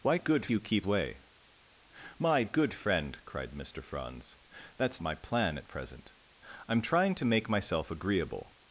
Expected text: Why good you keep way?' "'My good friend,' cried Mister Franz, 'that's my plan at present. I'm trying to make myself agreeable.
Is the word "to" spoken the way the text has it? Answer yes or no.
yes